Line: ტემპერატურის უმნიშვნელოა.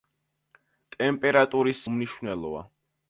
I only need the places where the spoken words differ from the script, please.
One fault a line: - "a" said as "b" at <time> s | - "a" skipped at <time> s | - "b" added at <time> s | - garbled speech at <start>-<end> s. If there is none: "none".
none